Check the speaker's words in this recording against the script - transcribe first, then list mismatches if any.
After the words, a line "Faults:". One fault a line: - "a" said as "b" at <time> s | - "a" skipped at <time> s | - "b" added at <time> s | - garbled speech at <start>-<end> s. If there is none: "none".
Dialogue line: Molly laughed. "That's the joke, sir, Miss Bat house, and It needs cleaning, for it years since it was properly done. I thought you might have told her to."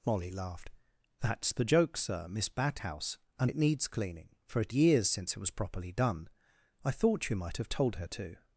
Molly laughed. "That's the joke, sir, Miss Bat house, and It needs cleaning, for it years since it was properly done. I thought you might have told her to."
Faults:
none